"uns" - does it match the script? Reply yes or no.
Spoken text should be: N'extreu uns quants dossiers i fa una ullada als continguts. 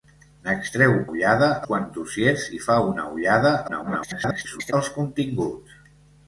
no